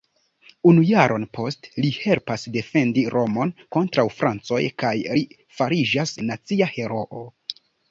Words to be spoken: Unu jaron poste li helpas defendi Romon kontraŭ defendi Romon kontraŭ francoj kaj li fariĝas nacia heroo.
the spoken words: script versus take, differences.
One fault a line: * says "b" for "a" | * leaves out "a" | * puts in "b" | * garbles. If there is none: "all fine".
* leaves out "defendi Romon kontraŭ"